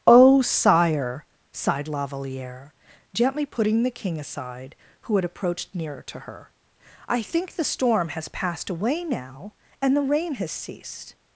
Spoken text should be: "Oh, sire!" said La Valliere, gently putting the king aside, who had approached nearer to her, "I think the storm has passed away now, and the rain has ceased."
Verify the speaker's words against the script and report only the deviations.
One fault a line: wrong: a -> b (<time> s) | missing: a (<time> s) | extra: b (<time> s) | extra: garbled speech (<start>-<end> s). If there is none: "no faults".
wrong: said -> sighed (1.5 s)